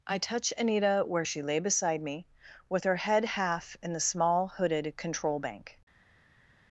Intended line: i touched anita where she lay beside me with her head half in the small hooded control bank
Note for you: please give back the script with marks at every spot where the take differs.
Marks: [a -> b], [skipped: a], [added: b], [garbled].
i [touched -> touch] anita where she lay beside me with her head half in the small hooded control bank